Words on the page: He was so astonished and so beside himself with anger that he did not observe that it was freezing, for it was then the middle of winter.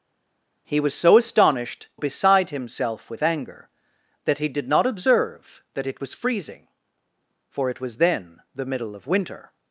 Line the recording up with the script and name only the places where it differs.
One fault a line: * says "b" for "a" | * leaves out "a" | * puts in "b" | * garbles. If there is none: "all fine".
* leaves out "and so"